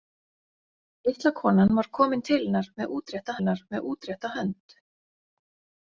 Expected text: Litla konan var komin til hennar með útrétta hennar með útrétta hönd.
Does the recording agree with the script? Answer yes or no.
yes